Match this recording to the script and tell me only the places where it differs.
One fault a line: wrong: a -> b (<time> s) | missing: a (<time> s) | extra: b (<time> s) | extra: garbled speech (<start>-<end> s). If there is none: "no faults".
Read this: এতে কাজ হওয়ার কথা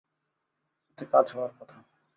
no faults